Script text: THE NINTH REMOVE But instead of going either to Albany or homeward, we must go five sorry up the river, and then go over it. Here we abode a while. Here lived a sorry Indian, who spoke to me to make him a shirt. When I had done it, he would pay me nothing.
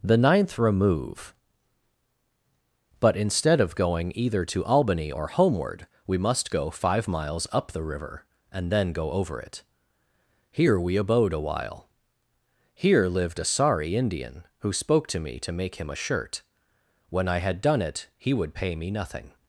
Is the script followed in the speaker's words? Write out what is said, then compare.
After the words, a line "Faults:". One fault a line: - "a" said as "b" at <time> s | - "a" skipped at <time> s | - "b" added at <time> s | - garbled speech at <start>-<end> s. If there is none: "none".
THE NINTH REMOVE But instead of going either to Albany or homeward, we must go five miles up the river, and then go over it. Here we abode a while. Here lived a sorry Indian, who spoke to me to make him a shirt. When I had done it, he would pay me nothing.
Faults:
- "sorry" said as "miles" at 7.1 s